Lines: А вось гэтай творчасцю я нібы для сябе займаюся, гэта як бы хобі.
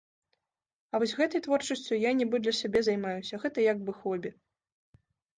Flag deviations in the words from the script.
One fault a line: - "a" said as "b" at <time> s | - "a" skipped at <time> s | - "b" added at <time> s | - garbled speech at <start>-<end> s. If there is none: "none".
none